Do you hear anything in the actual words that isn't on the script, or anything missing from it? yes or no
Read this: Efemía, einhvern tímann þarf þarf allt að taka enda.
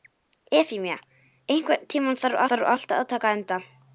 no